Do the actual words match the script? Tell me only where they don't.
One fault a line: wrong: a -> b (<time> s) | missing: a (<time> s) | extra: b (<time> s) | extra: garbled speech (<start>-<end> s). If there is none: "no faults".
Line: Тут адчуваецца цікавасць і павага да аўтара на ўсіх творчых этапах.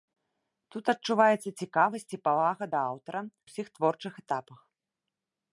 missing: на (3.2 s)